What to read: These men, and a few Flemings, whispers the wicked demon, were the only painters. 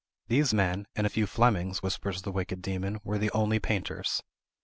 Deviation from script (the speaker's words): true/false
false